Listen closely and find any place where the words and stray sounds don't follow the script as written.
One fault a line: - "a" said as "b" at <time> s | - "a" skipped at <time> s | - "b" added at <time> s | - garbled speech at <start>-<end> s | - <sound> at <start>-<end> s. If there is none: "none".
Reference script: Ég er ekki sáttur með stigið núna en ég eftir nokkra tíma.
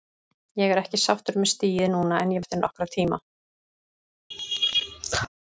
- laugh at 4.3-5.3 s